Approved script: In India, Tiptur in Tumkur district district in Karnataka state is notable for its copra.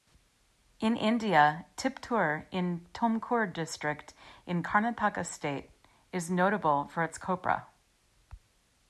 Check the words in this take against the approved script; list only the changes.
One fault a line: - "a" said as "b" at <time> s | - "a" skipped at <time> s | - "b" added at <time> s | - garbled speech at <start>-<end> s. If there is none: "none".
- "district" skipped at 4.2 s